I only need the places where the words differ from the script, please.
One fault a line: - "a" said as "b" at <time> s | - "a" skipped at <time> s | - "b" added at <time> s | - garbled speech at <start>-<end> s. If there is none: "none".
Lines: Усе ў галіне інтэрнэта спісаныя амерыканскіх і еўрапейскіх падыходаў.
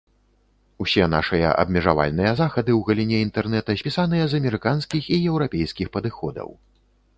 - "нашыя абмежавальныя захады" added at 1.1 s
- "з" added at 4.3 s